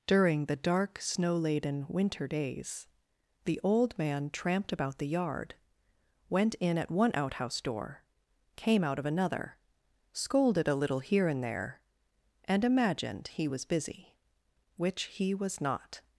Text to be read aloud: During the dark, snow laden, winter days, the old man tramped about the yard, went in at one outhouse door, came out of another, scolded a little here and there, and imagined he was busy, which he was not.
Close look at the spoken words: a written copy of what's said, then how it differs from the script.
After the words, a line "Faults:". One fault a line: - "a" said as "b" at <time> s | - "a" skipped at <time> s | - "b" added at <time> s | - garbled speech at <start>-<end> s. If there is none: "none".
During the dark, snow laden, winter days, the old man tramped about the yard, went in at one outhouse door, came out of another, scolded a little here and there, and imagined he was busy, which he was not.
Faults:
none